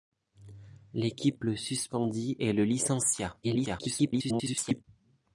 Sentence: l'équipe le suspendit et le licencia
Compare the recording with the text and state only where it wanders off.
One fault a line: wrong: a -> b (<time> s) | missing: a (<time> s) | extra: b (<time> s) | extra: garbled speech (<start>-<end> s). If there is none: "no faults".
extra: garbled speech (3.4-4.8 s)